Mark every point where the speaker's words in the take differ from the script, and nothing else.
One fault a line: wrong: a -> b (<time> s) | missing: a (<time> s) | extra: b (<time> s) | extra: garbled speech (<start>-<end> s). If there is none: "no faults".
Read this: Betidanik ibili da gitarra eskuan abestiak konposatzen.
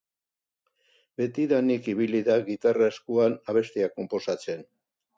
no faults